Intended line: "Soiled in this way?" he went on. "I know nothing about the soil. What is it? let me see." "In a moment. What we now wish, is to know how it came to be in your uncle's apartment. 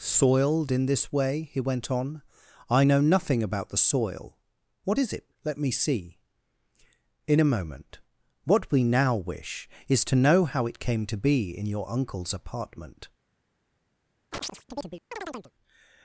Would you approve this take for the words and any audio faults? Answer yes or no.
no